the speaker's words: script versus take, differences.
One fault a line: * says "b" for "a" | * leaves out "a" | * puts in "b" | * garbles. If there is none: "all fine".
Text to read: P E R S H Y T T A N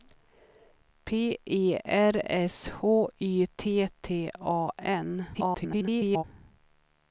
* garbles